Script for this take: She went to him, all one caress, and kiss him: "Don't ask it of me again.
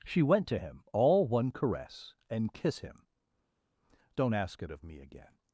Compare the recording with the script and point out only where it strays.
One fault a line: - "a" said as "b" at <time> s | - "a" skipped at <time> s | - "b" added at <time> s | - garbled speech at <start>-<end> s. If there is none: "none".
none